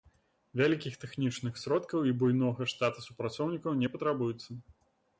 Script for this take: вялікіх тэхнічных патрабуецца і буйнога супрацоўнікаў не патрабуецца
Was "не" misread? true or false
false